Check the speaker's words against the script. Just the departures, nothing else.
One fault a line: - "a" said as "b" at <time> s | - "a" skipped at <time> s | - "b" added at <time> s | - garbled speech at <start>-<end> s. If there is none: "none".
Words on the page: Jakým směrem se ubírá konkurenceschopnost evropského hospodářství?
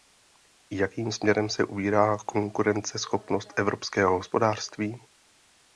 none